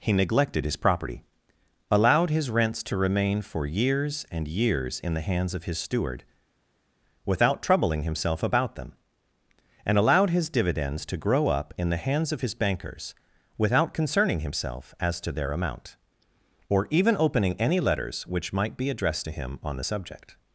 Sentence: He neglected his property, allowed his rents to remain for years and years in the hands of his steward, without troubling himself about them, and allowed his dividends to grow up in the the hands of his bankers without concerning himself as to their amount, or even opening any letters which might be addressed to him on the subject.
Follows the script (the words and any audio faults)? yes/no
no